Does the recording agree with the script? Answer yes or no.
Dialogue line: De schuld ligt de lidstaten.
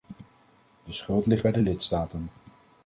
no